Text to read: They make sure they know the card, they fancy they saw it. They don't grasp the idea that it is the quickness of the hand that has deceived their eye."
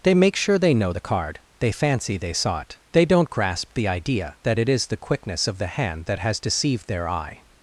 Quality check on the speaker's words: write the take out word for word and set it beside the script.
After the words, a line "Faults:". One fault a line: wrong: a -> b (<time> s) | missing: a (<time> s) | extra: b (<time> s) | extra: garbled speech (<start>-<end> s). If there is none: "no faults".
They make sure they know the card, they fancy they saw it. They don't grasp the idea that it is the quickness of the hand that has deceived their eye."
Faults:
no faults